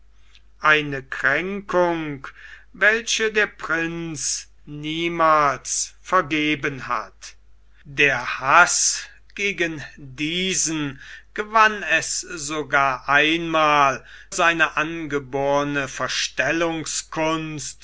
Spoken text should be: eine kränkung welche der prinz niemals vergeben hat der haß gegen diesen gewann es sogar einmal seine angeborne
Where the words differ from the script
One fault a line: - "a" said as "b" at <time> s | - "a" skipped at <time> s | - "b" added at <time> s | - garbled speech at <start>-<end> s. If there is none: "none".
none